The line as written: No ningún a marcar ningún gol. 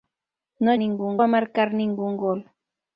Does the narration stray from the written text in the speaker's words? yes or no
no